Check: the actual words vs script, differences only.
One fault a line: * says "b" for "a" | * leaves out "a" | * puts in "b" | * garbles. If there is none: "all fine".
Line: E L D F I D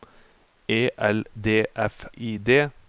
all fine